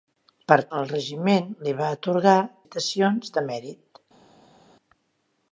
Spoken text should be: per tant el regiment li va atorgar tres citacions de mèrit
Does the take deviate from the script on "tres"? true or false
true